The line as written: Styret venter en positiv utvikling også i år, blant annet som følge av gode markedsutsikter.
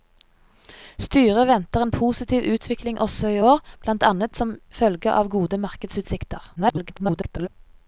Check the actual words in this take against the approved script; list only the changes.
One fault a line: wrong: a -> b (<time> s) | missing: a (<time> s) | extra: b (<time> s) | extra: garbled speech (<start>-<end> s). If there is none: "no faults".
extra: garbled speech (6.6-7.5 s)